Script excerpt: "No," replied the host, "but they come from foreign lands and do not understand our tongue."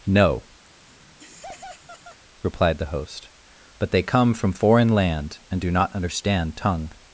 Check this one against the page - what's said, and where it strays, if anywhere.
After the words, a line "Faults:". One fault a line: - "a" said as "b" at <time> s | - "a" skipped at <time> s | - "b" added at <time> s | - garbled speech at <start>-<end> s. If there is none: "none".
"No," replied the host, "but they come from foreign land and do not understand tongue."
Faults:
- "lands" said as "land" at 4.9 s
- "our" skipped at 6.5 s